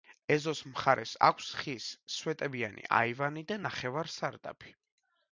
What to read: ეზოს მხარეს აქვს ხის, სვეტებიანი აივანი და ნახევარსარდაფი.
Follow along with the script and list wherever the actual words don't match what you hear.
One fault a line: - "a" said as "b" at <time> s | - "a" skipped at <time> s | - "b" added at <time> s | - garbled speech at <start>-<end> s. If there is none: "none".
none